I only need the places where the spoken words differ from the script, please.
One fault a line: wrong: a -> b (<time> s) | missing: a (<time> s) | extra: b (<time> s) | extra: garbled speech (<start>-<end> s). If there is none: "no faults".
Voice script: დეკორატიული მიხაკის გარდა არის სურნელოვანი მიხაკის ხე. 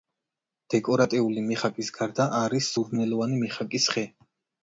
no faults